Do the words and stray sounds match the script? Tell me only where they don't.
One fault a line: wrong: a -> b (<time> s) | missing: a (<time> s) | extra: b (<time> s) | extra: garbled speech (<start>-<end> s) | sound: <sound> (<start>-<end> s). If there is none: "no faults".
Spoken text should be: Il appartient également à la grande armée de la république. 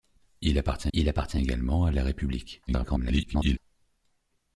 extra: il appartient (0.9 s)
missing: la grande armée (1.9 s)
extra: garbled speech (2.7-3.6 s)